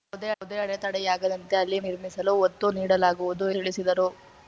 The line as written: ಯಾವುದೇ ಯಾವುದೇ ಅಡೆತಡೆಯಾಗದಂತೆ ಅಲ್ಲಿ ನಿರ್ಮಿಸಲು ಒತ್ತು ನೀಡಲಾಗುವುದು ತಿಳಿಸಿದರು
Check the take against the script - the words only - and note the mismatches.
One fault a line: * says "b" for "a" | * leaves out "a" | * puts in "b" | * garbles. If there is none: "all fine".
all fine